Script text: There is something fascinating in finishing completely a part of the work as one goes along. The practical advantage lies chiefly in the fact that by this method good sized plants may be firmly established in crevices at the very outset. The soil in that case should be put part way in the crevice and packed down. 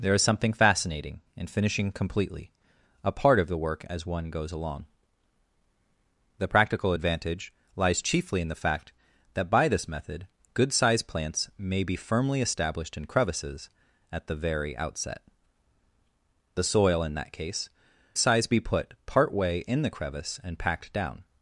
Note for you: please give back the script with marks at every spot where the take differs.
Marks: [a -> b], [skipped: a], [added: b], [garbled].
There is something fascinating in finishing completely a part of the work as one goes along. The practical advantage lies chiefly in the fact that by this method good sized plants may be firmly established in crevices at the very outset. The soil in that case [should -> sized] be put part way in the crevice and packed down.